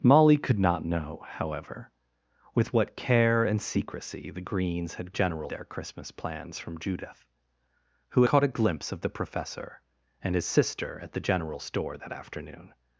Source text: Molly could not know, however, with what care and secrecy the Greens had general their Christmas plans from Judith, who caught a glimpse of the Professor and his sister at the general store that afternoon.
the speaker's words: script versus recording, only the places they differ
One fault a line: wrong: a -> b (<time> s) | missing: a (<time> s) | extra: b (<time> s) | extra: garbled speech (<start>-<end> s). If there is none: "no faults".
no faults